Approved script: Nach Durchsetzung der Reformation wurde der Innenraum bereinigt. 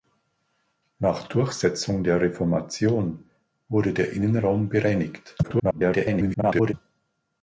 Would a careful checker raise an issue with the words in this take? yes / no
yes